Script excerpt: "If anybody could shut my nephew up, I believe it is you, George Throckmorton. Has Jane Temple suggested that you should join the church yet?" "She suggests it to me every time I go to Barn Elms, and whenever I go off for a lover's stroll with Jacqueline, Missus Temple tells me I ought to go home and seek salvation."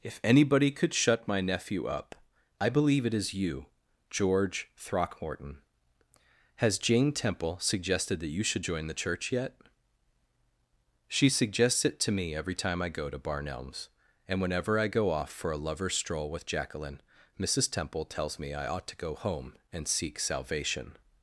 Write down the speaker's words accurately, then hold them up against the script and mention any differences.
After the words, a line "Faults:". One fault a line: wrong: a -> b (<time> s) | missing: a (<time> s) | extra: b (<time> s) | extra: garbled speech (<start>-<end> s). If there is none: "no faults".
"If anybody could shut my nephew up, I believe it is you, George Throckmorton. Has Jane Temple suggested that you should join the church yet?" "She suggests it to me every time I go to Barn Elms, and whenever I go off for a lover's stroll with Jacqueline, Missus Temple tells me I ought to go home and seek salvation."
Faults:
no faults